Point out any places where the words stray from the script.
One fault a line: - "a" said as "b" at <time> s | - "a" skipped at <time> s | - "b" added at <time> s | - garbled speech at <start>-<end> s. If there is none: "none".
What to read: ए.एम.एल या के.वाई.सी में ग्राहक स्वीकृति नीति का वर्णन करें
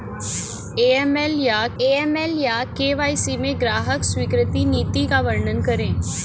- "ए.एम.एल या" added at 1.8 s